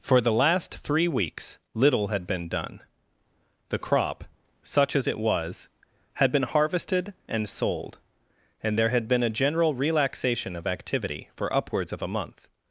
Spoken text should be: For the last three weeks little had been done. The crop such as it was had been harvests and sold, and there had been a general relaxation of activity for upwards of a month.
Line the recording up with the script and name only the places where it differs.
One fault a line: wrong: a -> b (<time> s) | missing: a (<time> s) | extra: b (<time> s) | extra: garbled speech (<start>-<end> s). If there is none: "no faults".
wrong: harvests -> harvested (6.5 s)